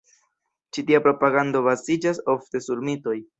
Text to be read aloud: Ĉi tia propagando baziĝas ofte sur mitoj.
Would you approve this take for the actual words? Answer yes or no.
yes